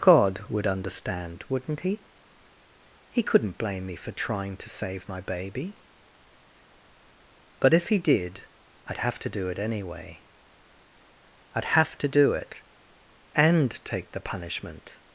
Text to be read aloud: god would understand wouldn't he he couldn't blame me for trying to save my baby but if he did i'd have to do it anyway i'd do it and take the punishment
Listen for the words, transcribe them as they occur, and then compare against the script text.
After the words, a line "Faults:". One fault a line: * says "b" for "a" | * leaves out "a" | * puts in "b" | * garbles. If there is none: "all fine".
god would understand wouldn't he he couldn't blame me for trying to save my baby but if he did i'd have to do it anyway i'd have to do it and take the punishment
Faults:
* puts in "have to"